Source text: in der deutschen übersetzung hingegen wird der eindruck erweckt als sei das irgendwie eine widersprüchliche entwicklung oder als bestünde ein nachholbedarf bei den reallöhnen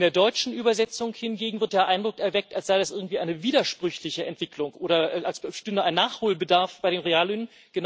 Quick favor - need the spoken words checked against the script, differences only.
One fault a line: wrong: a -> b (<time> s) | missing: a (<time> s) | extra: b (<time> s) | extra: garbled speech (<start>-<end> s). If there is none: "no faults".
no faults